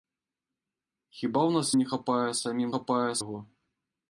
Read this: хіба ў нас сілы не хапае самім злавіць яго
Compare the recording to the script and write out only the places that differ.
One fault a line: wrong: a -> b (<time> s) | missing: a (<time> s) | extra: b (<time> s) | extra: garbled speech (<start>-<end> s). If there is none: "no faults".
missing: сілы (1.7 s)
wrong: злавіць -> хапае (2.8 s)